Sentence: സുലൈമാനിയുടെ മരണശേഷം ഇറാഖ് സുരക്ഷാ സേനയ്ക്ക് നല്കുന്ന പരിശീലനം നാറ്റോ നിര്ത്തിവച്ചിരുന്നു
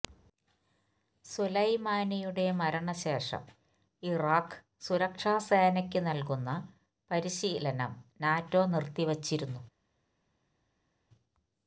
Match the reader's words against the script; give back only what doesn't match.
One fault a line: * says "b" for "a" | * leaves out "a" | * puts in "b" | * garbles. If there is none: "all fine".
all fine